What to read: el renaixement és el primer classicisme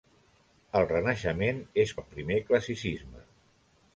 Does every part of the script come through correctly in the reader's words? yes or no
yes